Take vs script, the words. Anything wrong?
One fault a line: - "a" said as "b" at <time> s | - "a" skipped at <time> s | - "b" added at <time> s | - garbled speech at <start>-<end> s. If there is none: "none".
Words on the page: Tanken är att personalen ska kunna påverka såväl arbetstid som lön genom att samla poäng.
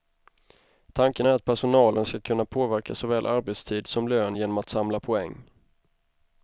none